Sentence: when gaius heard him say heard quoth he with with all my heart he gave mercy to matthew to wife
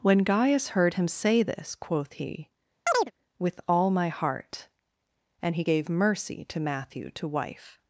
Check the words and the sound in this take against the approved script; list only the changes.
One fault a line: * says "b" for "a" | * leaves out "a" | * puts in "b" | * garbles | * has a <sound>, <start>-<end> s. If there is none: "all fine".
* says "this" for "heard"
* has a chirp, 2.9-3.1 s
* leaves out "with"
* puts in "and"